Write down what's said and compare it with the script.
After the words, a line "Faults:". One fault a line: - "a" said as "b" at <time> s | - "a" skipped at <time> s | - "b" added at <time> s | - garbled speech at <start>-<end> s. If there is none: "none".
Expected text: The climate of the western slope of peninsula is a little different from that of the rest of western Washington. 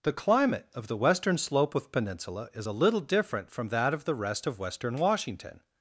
The climate of the western slope of peninsula is a little different from that of the rest of western Washington.
Faults:
none